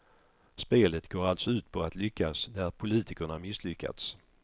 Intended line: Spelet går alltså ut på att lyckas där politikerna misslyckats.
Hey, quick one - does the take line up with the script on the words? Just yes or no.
yes